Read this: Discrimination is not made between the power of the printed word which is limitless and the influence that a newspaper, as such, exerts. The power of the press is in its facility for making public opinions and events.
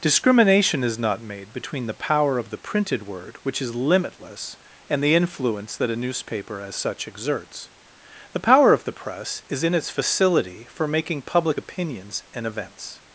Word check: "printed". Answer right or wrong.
right